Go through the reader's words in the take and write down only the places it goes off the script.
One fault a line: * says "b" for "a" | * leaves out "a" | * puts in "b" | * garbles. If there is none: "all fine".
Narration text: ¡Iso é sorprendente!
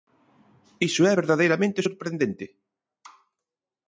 * puts in "verdadeiramente"